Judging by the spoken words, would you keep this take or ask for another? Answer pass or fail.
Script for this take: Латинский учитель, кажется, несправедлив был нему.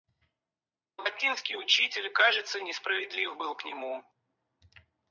fail